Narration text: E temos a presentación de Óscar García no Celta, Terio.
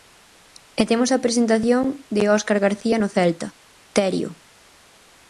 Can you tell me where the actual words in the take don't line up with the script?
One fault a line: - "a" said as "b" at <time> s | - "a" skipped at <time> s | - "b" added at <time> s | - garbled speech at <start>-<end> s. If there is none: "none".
none